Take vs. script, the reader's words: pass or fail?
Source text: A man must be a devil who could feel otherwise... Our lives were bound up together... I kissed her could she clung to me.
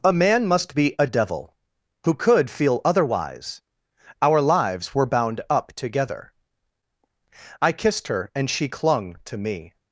fail